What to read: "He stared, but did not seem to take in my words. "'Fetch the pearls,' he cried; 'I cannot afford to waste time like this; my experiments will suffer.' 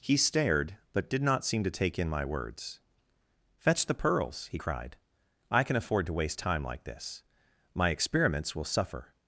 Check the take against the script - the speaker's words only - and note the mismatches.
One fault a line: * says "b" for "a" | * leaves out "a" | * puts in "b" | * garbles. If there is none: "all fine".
* says "can" for "cannot"